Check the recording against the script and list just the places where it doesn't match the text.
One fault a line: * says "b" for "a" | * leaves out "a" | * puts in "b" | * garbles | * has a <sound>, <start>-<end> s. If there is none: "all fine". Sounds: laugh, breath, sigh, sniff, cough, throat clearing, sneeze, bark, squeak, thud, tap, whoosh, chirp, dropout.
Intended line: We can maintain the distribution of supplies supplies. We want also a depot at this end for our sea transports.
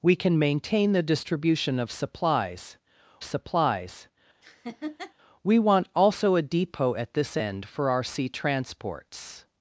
* has a laugh, 4.4-5.1 s